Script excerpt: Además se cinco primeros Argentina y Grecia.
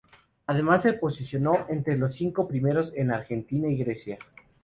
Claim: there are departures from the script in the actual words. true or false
true